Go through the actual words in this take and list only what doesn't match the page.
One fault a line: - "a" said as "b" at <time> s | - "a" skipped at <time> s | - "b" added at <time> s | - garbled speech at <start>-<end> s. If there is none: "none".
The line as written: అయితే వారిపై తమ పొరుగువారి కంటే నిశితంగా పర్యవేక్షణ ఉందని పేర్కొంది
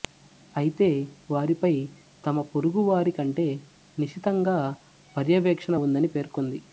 none